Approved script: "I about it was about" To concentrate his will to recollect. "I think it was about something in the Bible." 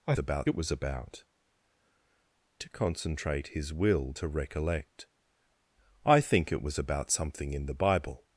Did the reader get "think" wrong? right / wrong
right